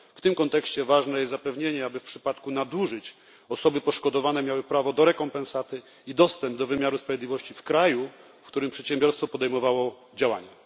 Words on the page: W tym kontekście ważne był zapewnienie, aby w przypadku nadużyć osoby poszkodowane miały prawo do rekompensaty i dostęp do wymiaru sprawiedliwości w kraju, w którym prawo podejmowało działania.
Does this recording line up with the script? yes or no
no